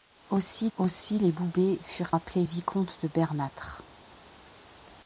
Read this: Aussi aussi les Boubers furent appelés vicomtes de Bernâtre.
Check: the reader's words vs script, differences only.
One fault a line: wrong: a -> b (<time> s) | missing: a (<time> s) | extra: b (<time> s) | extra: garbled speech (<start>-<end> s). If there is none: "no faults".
no faults